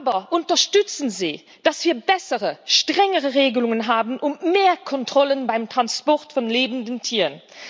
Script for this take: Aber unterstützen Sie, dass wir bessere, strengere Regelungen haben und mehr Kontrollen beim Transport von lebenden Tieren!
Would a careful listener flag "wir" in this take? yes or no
no